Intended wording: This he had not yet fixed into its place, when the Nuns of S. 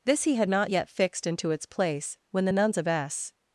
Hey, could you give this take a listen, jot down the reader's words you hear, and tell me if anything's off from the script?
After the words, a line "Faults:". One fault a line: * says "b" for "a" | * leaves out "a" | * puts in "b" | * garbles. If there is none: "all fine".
This he had not yet fixed into its place, when the Nuns of S.
Faults:
all fine